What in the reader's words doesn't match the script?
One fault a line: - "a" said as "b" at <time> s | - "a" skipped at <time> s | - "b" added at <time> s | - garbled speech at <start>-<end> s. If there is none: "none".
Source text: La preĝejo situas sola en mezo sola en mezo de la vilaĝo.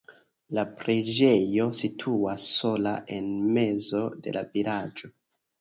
- "sola en mezo" skipped at 4.0 s